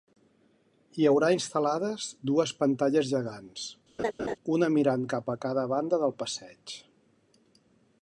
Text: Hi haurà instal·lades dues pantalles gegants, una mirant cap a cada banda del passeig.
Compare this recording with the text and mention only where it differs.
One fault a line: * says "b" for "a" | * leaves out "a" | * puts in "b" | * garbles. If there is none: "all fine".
all fine